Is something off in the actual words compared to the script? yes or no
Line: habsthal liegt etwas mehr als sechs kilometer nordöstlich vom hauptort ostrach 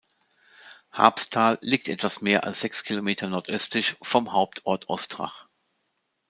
no